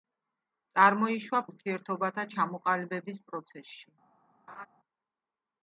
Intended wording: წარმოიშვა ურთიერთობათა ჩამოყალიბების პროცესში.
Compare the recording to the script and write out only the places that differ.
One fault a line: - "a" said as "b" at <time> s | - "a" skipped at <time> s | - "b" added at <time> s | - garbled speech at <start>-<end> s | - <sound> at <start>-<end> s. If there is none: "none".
- laugh at 4.5-4.7 s